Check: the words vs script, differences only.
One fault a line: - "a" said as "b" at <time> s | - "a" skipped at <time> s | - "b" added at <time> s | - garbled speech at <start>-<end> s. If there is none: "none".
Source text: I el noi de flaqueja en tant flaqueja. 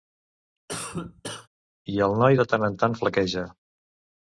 - "flaqueja" said as "tant" at 2.5 s